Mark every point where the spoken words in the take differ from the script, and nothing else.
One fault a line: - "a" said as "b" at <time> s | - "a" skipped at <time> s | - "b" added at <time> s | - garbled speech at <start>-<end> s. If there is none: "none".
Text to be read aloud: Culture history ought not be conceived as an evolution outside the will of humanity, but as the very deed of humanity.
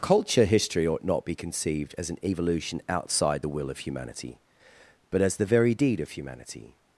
none